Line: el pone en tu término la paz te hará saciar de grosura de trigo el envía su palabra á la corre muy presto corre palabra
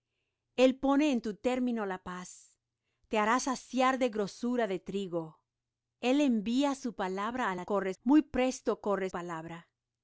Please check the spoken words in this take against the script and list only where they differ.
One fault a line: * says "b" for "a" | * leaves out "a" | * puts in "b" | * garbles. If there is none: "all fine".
all fine